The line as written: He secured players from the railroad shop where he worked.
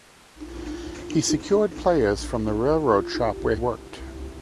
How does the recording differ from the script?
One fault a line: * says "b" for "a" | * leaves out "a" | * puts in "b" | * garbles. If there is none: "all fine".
* leaves out "he"